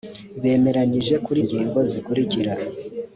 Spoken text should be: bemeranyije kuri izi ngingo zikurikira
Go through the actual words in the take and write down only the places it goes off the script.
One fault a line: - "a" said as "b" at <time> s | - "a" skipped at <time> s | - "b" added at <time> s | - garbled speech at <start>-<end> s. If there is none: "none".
- "izi" skipped at 1.4 s